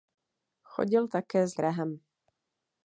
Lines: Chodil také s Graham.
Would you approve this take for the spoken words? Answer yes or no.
yes